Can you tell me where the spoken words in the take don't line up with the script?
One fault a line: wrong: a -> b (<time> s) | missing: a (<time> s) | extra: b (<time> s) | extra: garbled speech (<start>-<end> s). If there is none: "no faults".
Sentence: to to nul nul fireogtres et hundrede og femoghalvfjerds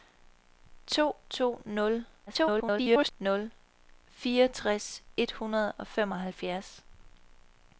extra: garbled speech (2.3-3.1 s)